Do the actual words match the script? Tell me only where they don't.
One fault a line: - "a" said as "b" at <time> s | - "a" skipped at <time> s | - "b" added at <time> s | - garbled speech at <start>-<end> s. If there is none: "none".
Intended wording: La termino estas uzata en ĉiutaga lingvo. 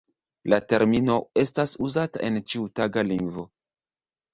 none